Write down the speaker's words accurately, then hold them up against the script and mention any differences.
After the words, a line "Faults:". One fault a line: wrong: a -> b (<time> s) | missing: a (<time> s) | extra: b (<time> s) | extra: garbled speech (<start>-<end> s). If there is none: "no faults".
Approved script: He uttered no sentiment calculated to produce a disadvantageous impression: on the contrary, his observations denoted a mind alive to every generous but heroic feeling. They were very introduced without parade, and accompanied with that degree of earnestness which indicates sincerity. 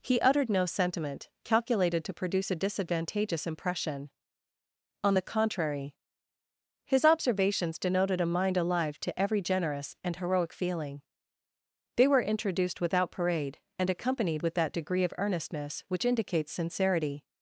He uttered no sentiment calculated to produce a disadvantageous impression: on the contrary, his observations denoted a mind alive to every generous and heroic feeling. They were introduced without parade, and accompanied with that degree of earnestness which indicates sincerity.
Faults:
wrong: but -> and (10.0 s)
missing: very (12.2 s)